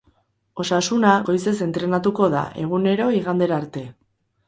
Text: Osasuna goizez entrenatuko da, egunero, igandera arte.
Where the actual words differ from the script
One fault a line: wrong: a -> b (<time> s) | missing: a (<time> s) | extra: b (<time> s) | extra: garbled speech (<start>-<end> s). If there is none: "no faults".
no faults